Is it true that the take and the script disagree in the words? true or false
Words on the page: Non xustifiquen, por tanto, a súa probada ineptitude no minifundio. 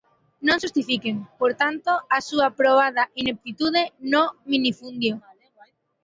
false